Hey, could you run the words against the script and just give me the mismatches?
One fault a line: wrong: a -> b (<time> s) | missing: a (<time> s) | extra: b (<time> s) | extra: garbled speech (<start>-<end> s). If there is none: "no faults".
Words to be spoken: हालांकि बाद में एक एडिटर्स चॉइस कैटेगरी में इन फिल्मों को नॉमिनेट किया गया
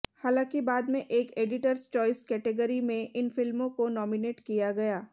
no faults